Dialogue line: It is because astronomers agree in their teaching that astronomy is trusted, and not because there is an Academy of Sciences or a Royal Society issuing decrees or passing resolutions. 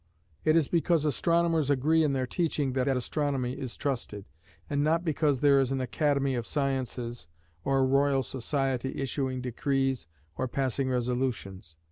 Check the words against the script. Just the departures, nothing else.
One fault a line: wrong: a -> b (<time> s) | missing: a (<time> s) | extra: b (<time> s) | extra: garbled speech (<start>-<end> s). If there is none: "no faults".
extra: that (2.8 s)